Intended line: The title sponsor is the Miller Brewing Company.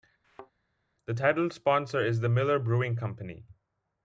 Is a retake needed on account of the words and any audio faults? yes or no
yes